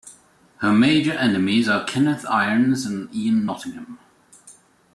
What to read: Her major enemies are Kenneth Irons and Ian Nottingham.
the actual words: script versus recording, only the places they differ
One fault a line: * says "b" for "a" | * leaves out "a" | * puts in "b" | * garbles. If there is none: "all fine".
all fine